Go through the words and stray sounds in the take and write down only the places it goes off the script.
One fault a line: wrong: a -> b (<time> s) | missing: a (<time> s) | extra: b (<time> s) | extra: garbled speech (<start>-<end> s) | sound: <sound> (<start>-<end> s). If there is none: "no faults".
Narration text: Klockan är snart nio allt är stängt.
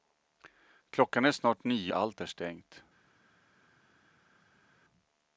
no faults